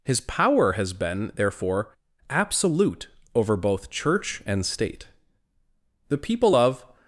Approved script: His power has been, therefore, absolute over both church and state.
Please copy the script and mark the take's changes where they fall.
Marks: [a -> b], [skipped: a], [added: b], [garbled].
His power has been, therefore, absolute over both church and state. [added: The people of]